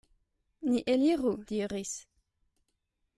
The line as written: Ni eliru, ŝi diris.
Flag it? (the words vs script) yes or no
yes